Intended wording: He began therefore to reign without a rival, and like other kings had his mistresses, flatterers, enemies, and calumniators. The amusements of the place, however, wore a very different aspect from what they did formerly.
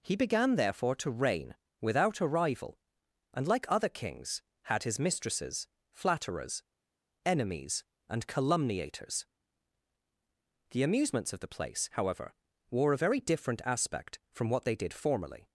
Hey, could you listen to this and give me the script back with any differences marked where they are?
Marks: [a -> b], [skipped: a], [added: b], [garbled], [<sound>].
He began therefore to reign without a rival, and like other kings had his mistresses, flatterers, enemies, and calumniators. The amusements of the place, however, wore a very different aspect from what they did formerly.